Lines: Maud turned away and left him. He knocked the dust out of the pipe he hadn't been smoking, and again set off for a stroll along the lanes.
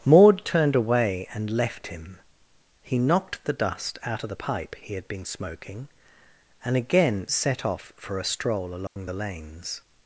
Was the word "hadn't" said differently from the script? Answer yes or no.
yes